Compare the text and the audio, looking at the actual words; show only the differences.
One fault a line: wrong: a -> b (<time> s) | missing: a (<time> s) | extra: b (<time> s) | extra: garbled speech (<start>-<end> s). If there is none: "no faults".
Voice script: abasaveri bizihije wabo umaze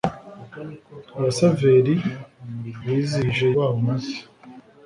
no faults